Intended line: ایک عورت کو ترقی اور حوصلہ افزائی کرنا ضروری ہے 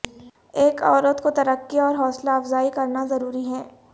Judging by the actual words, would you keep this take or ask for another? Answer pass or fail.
pass